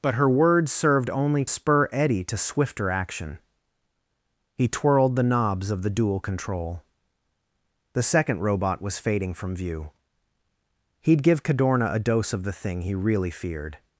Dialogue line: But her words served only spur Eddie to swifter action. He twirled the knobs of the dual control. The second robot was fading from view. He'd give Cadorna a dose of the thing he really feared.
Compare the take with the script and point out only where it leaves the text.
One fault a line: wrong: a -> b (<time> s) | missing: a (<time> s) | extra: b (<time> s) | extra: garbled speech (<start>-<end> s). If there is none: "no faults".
no faults